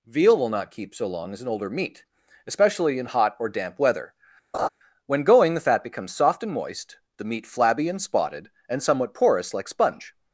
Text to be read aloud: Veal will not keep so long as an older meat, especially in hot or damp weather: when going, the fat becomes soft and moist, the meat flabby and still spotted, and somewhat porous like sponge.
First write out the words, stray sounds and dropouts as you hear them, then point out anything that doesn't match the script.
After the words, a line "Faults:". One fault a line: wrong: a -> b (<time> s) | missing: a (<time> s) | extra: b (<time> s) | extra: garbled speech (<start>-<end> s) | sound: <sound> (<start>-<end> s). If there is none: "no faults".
Veal will not keep so long as an older meat, especially in hot or damp weather: when going, the fat becomes soft and moist, the meat flabby and spotted, and somewhat porous like sponge.
Faults:
sound: laugh (4.5-4.7 s)
missing: still (8.0 s)